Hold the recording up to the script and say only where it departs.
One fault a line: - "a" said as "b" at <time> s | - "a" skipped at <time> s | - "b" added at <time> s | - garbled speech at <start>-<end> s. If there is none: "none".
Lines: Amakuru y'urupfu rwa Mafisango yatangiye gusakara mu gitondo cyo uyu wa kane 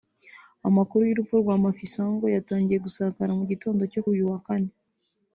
none